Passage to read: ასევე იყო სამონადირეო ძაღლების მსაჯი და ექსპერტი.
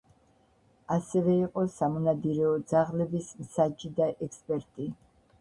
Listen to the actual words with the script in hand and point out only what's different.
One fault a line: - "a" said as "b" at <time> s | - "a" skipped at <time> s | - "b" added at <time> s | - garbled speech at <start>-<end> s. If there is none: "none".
none